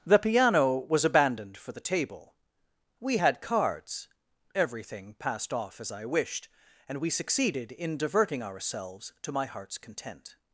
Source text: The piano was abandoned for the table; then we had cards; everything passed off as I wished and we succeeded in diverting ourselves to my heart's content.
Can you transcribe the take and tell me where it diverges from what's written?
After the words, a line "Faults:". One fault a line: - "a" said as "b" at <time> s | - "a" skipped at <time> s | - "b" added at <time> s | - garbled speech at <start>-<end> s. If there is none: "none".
The piano was abandoned for the table; we had cards; everything passed off as I wished and we succeeded in diverting ourselves to my heart's content.
Faults:
- "then" skipped at 2.3 s